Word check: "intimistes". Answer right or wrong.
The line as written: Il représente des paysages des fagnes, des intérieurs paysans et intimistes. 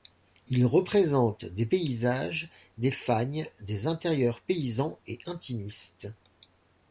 right